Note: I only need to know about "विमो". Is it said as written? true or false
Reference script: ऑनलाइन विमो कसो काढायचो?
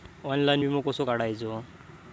true